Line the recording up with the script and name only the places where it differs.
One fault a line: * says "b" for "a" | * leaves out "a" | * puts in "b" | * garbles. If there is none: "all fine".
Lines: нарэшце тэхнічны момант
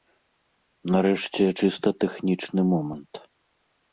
* puts in "чыста"